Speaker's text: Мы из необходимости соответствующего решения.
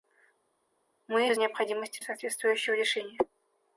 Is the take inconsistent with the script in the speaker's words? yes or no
no